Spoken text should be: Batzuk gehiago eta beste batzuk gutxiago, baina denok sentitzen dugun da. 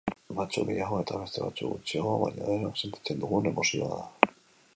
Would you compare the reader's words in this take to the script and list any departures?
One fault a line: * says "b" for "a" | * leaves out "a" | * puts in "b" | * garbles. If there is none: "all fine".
* puts in "emozioa"